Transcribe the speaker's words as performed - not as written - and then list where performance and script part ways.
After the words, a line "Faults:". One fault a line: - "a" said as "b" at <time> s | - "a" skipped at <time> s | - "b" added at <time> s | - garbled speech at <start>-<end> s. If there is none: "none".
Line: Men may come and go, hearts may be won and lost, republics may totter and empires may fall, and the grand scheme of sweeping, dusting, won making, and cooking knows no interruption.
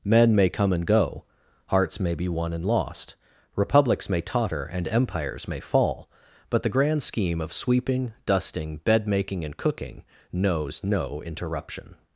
Men may come and go, hearts may be won and lost, republics may totter and empires may fall, but the grand scheme of sweeping, dusting, bed making, and cooking knows no interruption.
Faults:
- "and" said as "but" at 6.5 s
- "won" said as "bed" at 8.8 s